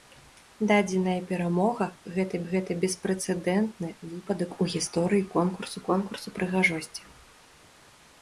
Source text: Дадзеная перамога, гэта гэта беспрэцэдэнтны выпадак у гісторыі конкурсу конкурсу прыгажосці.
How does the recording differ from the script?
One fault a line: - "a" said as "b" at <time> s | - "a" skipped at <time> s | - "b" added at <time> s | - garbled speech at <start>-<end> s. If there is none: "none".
none